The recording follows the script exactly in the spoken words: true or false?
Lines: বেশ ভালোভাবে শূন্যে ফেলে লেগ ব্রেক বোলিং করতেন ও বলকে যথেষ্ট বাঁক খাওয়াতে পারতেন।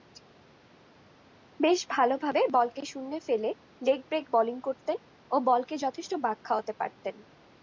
false